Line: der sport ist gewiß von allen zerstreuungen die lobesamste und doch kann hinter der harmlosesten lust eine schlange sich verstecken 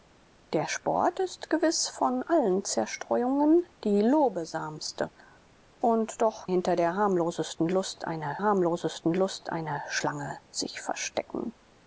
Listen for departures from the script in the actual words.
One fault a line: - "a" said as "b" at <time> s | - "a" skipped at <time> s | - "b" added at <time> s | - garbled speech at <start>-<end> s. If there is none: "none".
- "kann" skipped at 6.5 s
- "harmlosesten lust eine" added at 8.4 s